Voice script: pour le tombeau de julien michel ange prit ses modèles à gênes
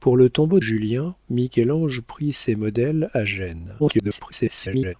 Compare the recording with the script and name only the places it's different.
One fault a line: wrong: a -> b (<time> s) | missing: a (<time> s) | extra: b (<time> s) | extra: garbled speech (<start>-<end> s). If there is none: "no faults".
missing: de (0.6 s)
extra: garbled speech (3.8-4.9 s)